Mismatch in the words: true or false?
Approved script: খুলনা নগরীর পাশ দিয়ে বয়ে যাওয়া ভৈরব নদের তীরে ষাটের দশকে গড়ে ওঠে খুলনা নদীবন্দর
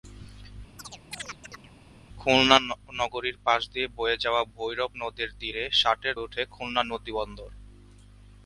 true